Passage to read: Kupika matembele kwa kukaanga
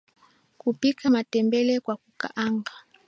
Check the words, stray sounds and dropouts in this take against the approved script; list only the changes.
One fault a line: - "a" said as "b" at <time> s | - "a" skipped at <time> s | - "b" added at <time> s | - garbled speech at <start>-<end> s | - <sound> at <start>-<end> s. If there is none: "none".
none